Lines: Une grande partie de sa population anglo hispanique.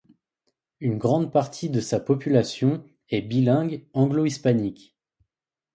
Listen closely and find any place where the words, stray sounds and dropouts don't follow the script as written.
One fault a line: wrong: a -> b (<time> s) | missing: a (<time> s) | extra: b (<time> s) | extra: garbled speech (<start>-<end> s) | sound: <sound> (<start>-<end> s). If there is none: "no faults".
extra: est bilingue (3.1 s)